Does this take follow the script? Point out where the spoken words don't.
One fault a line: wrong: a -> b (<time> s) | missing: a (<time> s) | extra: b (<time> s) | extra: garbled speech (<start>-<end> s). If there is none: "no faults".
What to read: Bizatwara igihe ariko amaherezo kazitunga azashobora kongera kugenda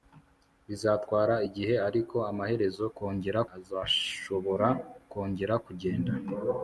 wrong: kazitunga -> kongera (3.0 s)